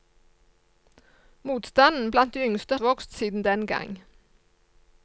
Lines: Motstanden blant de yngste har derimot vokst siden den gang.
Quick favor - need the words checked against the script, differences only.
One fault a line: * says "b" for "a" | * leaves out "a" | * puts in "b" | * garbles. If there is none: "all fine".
* leaves out "har derimot"